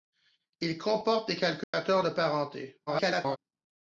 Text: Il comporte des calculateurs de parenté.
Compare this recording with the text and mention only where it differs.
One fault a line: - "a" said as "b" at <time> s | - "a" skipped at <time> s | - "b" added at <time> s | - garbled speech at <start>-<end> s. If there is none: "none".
- garbled speech at 2.9-3.4 s